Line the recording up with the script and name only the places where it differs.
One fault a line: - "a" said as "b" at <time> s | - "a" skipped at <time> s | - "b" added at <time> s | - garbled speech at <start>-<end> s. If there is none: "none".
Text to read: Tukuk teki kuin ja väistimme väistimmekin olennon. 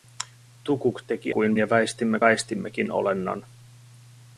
none